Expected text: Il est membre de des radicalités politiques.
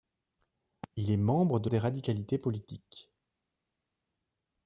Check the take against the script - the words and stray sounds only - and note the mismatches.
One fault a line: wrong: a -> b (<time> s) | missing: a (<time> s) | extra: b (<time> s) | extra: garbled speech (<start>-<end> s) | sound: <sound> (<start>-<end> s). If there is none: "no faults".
no faults